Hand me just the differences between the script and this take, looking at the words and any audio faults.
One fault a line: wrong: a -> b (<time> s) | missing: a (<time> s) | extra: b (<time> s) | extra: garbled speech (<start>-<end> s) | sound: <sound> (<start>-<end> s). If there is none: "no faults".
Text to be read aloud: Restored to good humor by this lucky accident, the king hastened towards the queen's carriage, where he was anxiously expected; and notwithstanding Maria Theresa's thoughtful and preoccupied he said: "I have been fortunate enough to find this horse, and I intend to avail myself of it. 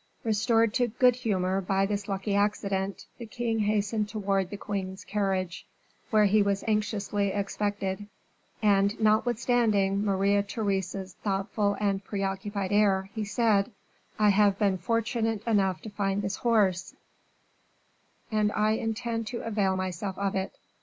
extra: air (12.7 s)